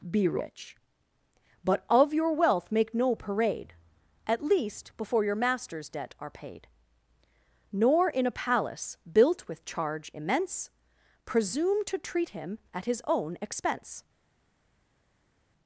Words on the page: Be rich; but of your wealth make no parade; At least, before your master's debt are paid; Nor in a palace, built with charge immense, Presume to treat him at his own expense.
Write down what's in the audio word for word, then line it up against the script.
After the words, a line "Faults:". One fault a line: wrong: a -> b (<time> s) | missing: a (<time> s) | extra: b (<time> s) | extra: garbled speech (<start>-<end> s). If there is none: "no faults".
Be rich; but of your wealth make no parade; At least, before your master's debt are paid; Nor in a palace, built with charge immense, Presume to treat him at his own expense.
Faults:
no faults